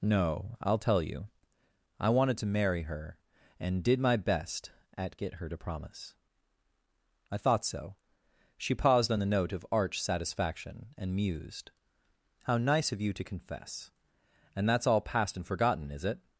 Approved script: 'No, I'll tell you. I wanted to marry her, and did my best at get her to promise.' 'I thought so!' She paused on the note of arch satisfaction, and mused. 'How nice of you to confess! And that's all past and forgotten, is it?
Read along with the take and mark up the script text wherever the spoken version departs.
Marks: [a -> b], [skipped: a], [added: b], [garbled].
'No, I'll tell you. I wanted to marry her, and did my best at get her to promise.' 'I thought so!' She paused on the note of arch satisfaction, and mused. 'How nice of you to confess! And that's all past and forgotten, is it?